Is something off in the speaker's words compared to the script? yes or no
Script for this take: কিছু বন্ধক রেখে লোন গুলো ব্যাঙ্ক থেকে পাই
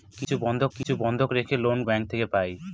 yes